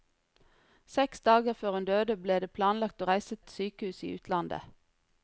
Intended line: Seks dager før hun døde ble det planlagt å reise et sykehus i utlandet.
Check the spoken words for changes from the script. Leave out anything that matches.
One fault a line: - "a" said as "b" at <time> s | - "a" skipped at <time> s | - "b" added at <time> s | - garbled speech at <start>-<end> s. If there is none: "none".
none